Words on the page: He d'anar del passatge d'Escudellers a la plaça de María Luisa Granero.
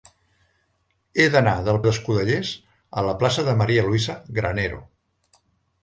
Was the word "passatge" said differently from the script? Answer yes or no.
yes